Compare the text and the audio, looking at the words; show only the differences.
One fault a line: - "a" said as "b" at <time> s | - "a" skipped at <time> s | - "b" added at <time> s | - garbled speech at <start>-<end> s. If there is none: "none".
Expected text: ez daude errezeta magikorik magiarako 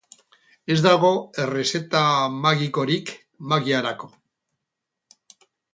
- "daude" said as "dago" at 0.8 s